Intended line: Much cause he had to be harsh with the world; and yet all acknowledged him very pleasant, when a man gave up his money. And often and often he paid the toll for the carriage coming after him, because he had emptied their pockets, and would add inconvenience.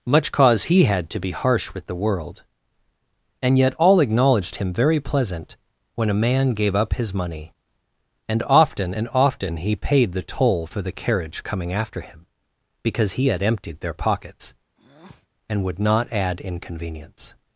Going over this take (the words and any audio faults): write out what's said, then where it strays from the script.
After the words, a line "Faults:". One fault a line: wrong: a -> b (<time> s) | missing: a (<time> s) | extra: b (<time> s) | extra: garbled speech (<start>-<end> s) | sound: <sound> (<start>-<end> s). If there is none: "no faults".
Much cause he had to be harsh with the world; and yet all acknowledged him very pleasant, when a man gave up his money. And often and often he paid the toll for the carriage coming after him, because he had emptied their pockets, and would not add inconvenience.
Faults:
sound: breath (14.8-15.3 s)
extra: not (15.8 s)